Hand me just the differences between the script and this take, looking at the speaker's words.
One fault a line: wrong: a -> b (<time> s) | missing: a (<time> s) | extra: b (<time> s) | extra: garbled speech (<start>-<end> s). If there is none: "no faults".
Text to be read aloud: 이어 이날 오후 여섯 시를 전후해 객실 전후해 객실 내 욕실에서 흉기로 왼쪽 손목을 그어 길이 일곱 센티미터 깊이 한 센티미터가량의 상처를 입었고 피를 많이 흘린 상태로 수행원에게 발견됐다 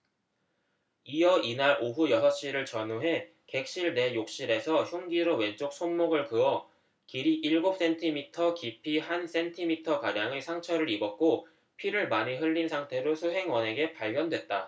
missing: 전후해 객실 (3.9 s)